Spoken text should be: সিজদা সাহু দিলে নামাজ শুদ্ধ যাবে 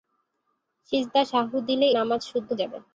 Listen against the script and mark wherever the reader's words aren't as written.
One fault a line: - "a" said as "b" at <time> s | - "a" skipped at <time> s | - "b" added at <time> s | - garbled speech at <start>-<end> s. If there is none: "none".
none